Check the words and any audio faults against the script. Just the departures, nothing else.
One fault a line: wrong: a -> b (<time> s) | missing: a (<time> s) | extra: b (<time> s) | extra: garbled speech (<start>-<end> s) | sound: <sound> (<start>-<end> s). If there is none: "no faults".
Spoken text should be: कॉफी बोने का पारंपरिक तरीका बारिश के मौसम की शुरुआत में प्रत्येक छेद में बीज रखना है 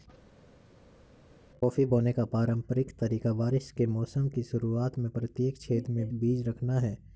no faults